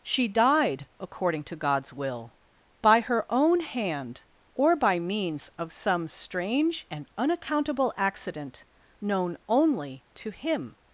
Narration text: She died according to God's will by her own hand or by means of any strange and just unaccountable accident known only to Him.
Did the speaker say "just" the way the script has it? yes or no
no